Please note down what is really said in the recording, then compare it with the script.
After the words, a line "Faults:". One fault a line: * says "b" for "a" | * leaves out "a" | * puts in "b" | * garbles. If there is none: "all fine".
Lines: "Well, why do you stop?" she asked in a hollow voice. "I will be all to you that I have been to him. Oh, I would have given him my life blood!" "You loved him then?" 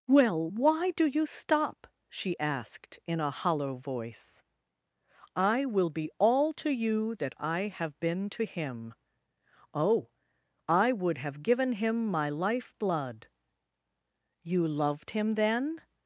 "Well, why do you stop?" she asked in a hollow voice. "I will be all to you that I have been to him. Oh, I would have given him my life blood!" "You loved him then?"
Faults:
all fine